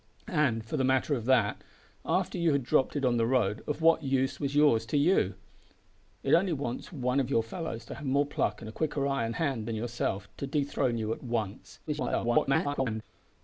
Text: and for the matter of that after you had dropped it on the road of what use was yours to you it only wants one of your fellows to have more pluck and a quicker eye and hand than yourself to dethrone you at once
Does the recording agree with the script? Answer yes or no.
no